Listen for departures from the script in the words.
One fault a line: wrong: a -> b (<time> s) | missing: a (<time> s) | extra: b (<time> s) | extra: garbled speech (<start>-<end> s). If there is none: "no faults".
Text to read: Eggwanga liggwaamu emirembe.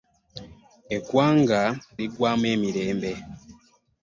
no faults